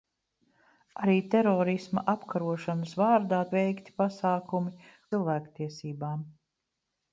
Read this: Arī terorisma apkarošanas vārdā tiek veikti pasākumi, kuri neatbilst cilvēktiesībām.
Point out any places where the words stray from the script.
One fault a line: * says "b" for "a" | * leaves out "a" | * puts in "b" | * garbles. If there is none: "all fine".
* leaves out "tiek"
* leaves out "kuri neatbilst"